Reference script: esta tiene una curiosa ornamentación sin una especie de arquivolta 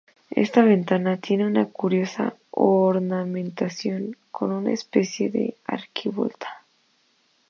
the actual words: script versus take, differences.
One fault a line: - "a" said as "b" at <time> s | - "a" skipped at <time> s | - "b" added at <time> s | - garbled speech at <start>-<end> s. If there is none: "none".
- "ventana" added at 0.6 s
- "sin" said as "con" at 4.3 s